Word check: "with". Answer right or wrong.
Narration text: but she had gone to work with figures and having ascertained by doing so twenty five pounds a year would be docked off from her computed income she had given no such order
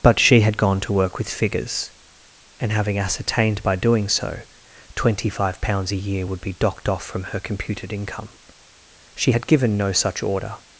right